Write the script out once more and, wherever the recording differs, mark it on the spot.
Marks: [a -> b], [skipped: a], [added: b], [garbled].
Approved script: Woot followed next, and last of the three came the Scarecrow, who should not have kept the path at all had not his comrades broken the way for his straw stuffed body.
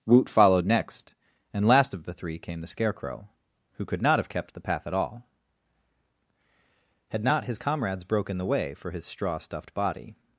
Woot followed next, and last of the three came the Scarecrow, who [should -> could] not have kept the path at all had not his comrades broken the way for his straw stuffed body.